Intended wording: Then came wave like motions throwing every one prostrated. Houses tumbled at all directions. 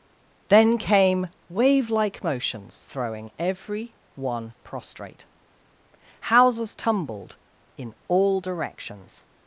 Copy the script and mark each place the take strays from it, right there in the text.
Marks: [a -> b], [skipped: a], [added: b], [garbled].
Then came wave like motions throwing every one [prostrated. -> prostrate] Houses tumbled [at -> in] all directions.